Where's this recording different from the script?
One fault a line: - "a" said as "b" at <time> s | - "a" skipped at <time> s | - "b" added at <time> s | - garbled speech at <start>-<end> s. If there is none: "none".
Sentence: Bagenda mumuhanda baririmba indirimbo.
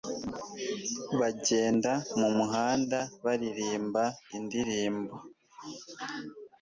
none